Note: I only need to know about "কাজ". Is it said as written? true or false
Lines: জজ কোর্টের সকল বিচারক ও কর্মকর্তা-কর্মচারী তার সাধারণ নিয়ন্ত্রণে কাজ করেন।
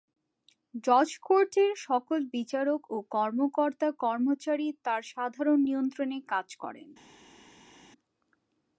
true